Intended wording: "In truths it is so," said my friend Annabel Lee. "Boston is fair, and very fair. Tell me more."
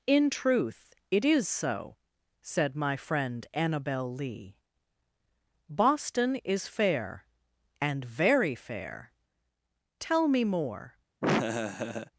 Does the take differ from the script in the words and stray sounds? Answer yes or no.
yes